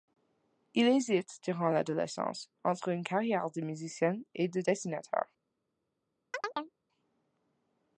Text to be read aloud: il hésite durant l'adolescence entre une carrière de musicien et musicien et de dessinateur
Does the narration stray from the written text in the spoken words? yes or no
yes